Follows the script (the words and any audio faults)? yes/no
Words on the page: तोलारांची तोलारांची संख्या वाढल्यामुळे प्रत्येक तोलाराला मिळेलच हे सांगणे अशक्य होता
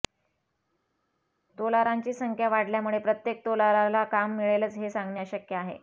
no